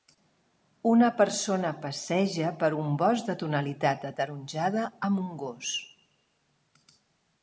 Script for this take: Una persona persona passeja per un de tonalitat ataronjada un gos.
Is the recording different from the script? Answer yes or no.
yes